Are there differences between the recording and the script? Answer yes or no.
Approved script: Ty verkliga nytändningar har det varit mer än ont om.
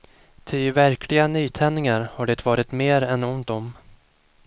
no